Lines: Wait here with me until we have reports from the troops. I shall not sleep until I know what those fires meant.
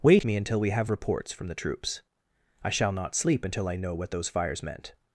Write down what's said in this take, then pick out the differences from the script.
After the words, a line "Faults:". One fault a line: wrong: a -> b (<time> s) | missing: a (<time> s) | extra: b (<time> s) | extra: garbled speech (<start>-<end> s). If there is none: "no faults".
Wait me until we have reports from the troops. I shall not sleep until I know what those fires meant.
Faults:
missing: here with (0.2 s)